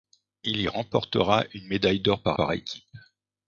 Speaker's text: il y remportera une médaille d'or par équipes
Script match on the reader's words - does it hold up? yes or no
no